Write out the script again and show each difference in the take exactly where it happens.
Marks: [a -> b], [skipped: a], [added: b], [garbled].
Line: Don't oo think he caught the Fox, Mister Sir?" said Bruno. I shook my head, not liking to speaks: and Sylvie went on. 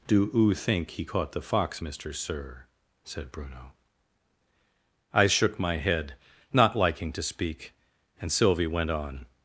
[Don't -> Do] oo think he caught the Fox, Mister Sir?" said Bruno. I shook my head, not liking to [speaks: -> speak] and Sylvie went on.